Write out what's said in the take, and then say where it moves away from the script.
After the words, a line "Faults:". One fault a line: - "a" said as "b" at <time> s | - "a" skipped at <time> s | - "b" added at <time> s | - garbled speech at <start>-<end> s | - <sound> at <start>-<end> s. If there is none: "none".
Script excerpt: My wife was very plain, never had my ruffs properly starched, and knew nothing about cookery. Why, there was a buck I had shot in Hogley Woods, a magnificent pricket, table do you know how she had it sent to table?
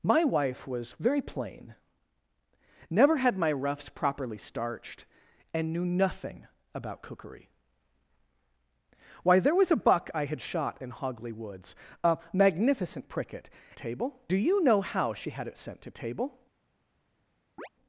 My wife was very plain, never had my ruffs properly starched, and knew nothing about cookery. Why, there was a buck I had shot in Hogley Woods, a magnificent pricket, table do you know how she had it sent to table?
Faults:
- chirp at 17.6-17.7 s